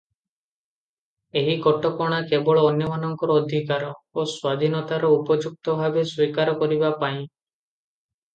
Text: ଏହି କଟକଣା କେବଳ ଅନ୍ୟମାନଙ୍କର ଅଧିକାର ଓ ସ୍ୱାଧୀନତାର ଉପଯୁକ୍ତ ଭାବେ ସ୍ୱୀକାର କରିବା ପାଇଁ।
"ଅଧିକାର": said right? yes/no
yes